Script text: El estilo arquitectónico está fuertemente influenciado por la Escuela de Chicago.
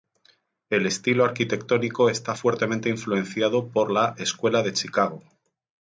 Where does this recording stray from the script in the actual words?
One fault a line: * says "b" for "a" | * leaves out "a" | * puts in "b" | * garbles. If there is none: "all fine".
all fine